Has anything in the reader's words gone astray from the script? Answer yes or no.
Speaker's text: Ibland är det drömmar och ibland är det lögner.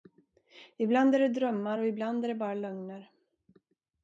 yes